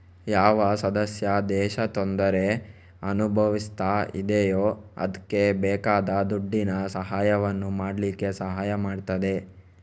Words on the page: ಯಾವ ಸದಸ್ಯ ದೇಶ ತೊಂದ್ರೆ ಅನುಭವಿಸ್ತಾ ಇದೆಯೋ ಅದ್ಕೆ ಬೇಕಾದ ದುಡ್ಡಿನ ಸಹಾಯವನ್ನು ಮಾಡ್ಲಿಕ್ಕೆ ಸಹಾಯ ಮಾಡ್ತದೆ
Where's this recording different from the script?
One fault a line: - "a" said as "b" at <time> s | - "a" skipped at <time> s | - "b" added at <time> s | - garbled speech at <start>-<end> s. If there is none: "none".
none